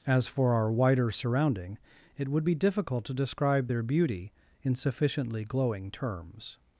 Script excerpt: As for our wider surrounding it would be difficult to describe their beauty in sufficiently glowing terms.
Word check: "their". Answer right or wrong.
right